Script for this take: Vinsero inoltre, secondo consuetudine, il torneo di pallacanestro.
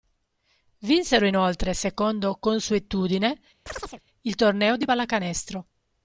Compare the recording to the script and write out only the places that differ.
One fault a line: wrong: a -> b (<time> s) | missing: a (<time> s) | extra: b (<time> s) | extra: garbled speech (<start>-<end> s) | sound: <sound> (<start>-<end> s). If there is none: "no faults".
sound: chirp (3.7-4.0 s)